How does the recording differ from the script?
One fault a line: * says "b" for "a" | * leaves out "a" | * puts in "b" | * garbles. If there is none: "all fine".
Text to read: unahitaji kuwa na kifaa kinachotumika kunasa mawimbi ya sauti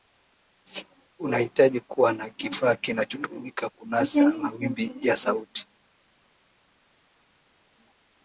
all fine